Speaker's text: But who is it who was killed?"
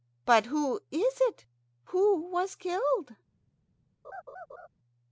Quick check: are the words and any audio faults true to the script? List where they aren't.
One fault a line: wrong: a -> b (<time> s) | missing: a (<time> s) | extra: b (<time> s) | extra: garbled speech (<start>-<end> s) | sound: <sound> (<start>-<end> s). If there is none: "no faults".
sound: laugh (4.0-4.7 s)